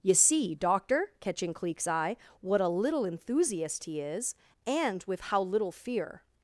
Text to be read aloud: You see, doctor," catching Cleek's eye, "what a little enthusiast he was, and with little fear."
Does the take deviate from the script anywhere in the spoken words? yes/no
yes